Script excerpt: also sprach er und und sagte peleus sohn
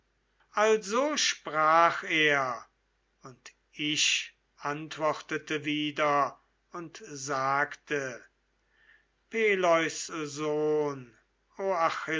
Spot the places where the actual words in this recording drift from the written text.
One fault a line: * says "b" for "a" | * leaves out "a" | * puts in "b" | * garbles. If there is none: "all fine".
* puts in "ich antwortete wieder"